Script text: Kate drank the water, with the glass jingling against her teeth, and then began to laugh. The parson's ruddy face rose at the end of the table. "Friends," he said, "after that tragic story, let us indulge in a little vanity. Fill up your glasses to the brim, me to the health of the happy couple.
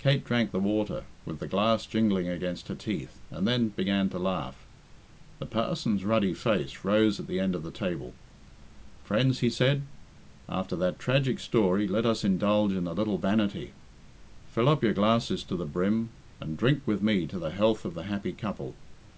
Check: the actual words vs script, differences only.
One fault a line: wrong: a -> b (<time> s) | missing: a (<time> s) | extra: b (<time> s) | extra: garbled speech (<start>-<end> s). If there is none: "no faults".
extra: and drink with (16.4 s)